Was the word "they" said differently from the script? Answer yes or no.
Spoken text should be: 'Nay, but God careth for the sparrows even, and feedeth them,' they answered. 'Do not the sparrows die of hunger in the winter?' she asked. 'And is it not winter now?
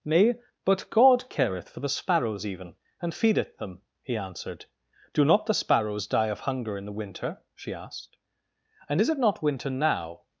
yes